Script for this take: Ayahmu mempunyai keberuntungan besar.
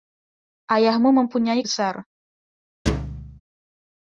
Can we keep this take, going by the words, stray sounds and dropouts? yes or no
no